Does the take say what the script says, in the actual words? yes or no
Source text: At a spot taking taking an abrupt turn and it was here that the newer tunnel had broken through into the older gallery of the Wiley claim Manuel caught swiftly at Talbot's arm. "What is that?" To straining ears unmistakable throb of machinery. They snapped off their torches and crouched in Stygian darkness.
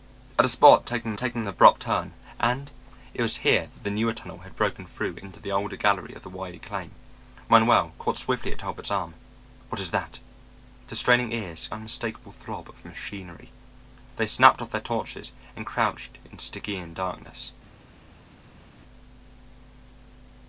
yes